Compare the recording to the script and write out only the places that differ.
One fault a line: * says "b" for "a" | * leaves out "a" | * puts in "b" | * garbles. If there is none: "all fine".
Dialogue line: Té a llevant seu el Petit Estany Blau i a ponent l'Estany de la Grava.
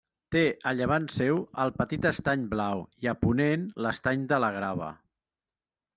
all fine